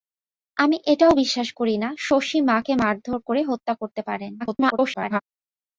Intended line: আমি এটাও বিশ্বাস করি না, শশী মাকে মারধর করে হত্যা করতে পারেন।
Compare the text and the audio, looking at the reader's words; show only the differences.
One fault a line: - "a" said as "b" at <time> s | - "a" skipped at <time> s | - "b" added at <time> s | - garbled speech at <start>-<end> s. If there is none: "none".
- garbled speech at 4.4-5.2 s